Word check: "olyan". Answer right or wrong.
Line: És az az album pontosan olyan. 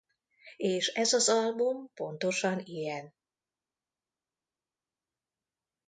wrong